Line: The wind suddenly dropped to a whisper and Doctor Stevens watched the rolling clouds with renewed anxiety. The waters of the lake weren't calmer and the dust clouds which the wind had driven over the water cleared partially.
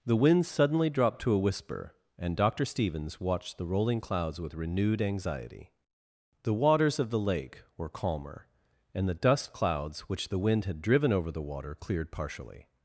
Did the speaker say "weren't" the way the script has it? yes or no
no